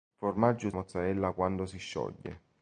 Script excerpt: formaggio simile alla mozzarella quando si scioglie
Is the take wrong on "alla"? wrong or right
wrong